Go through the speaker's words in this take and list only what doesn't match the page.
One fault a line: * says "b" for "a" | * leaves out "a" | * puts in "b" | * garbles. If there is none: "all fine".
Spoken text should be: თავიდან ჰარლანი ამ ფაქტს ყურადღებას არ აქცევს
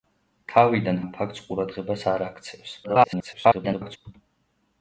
* leaves out "ჰარლანი"
* garbles